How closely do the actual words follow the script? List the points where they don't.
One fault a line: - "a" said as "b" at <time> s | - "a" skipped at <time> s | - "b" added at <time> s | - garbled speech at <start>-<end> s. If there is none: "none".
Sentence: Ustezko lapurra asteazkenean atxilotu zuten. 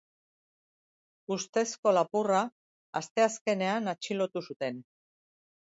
none